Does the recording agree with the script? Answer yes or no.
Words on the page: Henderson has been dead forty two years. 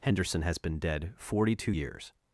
yes